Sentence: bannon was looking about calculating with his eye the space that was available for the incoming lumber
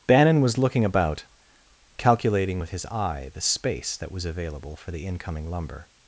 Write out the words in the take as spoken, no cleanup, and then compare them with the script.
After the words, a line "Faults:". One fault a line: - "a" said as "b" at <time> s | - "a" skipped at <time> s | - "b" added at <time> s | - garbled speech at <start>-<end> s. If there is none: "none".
bannon was looking about calculating with his eye the space that was available for the incoming lumber
Faults:
none